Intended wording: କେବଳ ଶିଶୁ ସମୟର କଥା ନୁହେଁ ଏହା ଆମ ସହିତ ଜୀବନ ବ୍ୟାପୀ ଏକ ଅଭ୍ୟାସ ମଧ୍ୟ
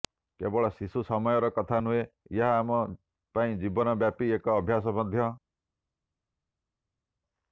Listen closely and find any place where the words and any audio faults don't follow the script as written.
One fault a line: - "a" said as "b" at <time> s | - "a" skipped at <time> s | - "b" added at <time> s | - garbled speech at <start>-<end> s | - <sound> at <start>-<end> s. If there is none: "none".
- "ସହିତ" said as "ପାଇଁ" at 3.3 s